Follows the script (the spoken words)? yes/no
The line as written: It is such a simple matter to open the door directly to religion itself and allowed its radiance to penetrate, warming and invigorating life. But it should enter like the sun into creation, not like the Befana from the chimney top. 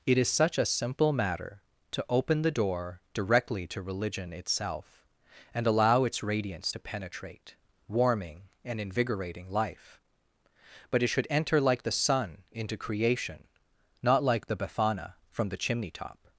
no